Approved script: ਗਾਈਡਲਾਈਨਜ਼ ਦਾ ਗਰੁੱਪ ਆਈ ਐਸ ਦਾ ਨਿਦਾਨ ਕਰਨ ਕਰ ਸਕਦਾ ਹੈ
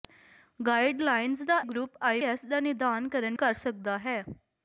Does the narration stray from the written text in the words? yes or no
no